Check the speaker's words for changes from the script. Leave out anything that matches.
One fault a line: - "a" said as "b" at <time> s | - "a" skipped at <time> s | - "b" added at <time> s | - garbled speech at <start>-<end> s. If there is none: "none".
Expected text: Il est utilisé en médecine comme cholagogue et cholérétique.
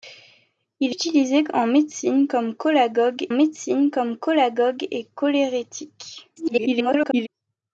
- "est" skipped at 0.9 s
- "médecine comme cholagogue" added at 3.3 s
- garbled speech at 6.4-7.3 s